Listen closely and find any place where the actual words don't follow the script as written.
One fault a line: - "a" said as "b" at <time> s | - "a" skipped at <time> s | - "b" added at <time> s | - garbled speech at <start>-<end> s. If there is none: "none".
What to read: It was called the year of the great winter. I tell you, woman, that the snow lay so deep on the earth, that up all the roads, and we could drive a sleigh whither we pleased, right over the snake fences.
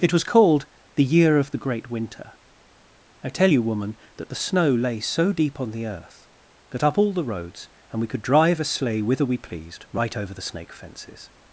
none